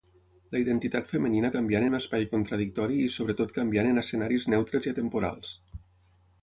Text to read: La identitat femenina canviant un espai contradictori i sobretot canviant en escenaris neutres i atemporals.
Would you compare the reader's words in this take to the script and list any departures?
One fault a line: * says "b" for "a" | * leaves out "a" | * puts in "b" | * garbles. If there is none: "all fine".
all fine